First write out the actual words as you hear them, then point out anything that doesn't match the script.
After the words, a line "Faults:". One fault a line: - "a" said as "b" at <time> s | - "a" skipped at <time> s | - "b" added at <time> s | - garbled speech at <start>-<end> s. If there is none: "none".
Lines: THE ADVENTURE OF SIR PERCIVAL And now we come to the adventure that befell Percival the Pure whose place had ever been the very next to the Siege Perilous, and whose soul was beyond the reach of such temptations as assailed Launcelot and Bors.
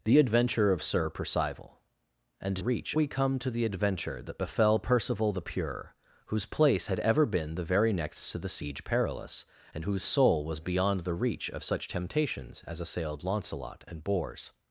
THE ADVENTURE OF SIR PERCIVAL And reach we come to the adventure that befell Percival the Pure whose place had ever been the very next to the Siege Perilous, and whose soul was beyond the reach of such temptations as assailed Launcelot and Bors.
Faults:
- "now" said as "reach" at 2.6 s